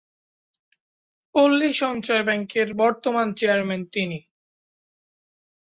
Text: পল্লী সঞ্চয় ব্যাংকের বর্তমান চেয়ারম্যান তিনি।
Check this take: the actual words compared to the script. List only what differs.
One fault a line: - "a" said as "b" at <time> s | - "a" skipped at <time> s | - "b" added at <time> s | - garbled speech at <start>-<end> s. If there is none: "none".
none